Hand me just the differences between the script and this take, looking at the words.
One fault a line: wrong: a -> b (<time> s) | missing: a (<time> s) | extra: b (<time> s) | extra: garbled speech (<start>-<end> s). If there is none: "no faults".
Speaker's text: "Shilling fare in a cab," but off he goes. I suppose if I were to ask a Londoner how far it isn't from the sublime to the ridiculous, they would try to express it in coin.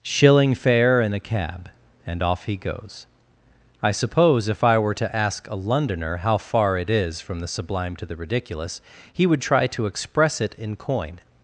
wrong: but -> and (2.1 s)
wrong: isn't -> is (6.9 s)
wrong: they -> he (9.1 s)